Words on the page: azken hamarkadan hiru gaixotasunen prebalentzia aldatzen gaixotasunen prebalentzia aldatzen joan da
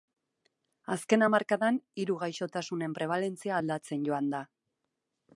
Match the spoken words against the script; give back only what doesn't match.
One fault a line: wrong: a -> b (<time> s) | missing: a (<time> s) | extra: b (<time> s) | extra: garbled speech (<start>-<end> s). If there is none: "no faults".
missing: gaixotasunen prebalentzia aldatzen (4.1 s)